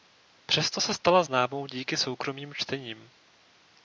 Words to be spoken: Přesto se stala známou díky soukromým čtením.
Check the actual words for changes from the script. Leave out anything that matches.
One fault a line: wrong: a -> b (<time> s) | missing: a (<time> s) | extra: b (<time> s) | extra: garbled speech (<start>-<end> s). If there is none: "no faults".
no faults